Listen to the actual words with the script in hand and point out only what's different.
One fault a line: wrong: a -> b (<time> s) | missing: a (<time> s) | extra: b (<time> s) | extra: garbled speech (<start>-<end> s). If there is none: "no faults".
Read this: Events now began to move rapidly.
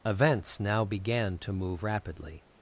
no faults